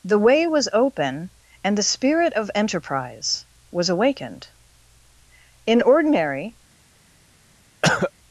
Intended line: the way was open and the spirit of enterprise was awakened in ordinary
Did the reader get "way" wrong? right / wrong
right